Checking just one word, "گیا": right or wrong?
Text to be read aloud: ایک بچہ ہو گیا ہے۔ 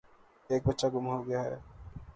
right